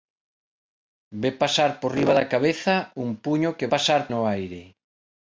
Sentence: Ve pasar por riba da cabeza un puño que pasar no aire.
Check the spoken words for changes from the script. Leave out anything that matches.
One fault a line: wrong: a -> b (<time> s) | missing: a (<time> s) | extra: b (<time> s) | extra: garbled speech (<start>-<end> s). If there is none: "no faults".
no faults